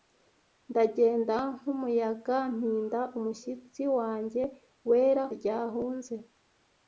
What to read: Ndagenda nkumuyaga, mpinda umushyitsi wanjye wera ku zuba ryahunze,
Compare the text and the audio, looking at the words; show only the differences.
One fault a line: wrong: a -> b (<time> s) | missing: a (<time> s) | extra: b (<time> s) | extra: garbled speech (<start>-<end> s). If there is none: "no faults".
missing: ku zuba (5.2 s)